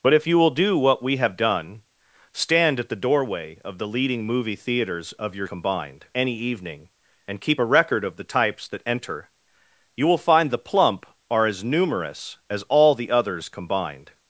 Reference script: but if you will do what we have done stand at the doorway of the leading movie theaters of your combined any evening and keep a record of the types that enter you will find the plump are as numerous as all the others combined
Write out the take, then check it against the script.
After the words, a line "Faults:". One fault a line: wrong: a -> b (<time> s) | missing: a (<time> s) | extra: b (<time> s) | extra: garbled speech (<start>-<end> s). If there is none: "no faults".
but if you will do what we have done stand at the doorway of the leading movie theaters of your combined any evening and keep a record of the types that enter you will find the plump are as numerous as all the others combined
Faults:
no faults